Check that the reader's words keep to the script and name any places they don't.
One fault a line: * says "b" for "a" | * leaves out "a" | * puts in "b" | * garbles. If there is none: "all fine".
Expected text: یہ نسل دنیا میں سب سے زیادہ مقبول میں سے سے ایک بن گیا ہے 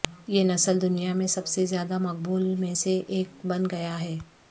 * leaves out "سے"